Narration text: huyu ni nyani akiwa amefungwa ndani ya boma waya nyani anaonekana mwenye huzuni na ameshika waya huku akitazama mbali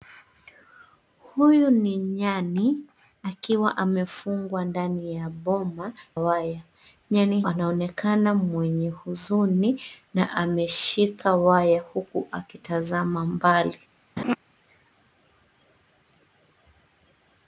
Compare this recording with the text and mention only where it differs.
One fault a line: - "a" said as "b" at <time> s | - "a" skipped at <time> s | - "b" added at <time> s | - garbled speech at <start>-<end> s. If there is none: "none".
none